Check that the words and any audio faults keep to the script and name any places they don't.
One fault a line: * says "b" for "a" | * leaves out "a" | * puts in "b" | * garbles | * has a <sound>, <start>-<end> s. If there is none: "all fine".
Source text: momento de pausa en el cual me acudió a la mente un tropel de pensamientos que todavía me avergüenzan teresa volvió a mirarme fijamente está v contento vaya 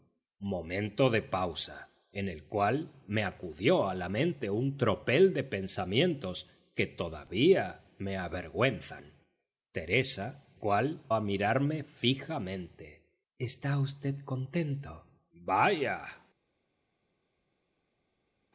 * says "cual" for "volvió"